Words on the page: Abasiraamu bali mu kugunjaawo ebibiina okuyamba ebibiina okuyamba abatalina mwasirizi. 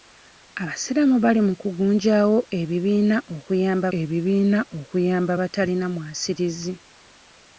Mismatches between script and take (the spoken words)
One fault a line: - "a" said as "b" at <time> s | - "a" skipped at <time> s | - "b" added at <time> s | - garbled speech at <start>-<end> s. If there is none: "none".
none